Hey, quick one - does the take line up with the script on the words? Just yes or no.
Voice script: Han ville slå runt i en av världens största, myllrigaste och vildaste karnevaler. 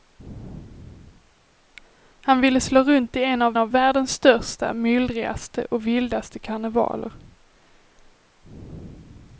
no